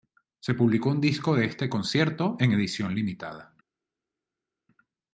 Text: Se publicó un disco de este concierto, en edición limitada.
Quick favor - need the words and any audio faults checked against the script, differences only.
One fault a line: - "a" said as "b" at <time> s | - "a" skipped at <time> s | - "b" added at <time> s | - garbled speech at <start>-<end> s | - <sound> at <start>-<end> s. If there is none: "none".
none